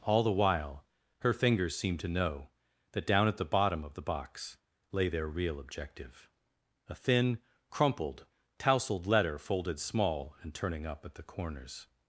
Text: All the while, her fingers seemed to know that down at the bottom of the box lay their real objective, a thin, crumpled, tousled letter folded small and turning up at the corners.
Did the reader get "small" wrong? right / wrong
right